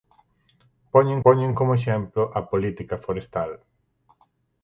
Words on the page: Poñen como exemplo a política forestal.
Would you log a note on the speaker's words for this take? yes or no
yes